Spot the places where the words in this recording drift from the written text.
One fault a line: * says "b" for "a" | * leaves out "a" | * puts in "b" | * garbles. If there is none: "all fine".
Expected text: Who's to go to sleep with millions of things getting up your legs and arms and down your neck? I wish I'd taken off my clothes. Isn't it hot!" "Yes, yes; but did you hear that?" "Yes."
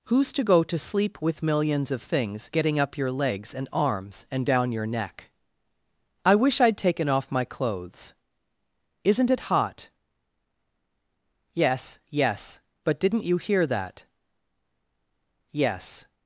* says "didn't" for "did"